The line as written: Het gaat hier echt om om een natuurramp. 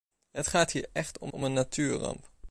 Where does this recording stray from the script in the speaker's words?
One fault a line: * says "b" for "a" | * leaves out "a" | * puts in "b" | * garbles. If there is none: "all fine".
all fine